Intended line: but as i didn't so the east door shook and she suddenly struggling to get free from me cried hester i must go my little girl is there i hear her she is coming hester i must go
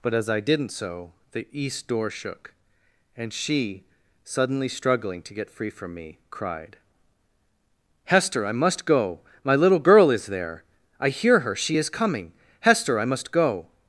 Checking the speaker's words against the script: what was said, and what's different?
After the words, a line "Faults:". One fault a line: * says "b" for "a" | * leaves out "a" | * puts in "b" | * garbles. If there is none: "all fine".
but as i didn't so the east door shook and she suddenly struggling to get free from me cried hester i must go my little girl is there i hear her she is coming hester i must go
Faults:
all fine